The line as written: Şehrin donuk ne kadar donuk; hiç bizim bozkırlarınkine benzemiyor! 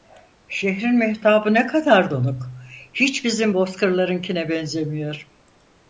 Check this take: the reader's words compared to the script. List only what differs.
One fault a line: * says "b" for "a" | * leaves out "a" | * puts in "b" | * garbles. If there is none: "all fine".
* says "mehtabı" for "donuk"